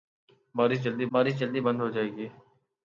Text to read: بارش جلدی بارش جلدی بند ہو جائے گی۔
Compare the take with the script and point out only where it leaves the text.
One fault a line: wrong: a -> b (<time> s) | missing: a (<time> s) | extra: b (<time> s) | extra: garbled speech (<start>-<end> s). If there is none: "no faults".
no faults